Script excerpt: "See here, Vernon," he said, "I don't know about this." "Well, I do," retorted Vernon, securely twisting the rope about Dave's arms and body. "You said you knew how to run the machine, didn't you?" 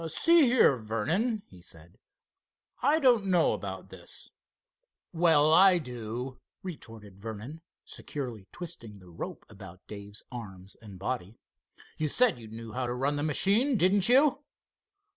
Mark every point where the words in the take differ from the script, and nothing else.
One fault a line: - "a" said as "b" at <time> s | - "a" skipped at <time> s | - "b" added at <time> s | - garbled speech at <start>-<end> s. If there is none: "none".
none